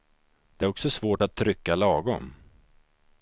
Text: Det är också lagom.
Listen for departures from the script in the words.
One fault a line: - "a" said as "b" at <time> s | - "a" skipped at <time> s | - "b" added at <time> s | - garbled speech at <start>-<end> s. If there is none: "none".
- "svårt att trycka" added at 0.9 s